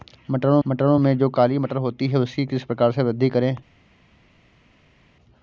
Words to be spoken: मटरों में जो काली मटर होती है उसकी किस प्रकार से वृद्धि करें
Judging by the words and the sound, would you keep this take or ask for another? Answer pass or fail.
fail